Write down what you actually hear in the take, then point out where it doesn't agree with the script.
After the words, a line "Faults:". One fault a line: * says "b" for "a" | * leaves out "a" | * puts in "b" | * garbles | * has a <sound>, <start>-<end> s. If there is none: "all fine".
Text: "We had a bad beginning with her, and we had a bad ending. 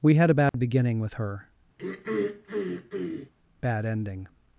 "We had a bad beginning with her, bad ending.
Faults:
* has a dropout, 0.5-0.5 s
* leaves out "and we had a"
* has a throat clearing, 1.8-3.3 s